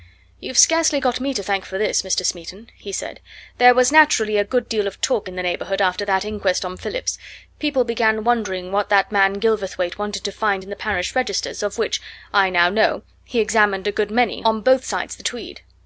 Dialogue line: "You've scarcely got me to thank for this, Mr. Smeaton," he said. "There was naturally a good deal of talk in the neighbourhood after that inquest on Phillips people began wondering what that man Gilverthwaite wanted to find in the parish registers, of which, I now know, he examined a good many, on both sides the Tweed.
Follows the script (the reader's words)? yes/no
yes